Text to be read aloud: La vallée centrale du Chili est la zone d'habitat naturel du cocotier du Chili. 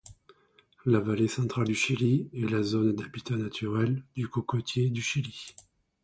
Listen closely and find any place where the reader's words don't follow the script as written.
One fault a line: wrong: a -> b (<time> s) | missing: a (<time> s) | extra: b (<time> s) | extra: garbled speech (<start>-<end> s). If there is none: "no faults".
no faults